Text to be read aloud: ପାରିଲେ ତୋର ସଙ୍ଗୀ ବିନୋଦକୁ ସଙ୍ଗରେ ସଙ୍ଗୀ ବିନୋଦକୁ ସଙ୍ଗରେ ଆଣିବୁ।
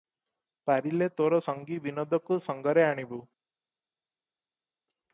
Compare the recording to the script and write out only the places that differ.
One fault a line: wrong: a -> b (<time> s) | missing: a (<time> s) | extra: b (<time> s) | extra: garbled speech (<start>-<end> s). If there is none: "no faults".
missing: ସଙ୍ଗୀ ବିନୋଦକୁ ସଙ୍ଗରେ (2.9 s)